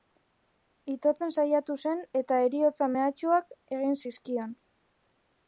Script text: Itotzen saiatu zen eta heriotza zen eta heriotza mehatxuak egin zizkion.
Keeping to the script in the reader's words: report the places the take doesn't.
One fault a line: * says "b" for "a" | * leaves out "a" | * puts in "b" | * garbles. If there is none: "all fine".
* leaves out "zen eta heriotza"